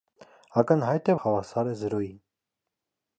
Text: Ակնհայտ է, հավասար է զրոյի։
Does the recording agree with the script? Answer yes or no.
yes